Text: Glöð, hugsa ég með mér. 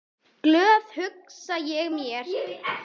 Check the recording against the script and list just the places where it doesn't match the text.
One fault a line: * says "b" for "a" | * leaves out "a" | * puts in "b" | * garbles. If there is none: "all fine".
all fine